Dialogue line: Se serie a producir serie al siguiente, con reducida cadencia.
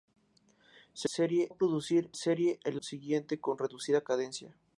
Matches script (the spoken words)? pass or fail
pass